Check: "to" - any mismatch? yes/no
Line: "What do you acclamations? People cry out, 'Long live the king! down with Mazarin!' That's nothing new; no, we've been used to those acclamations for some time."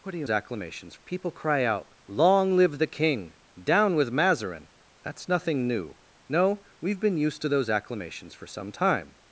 no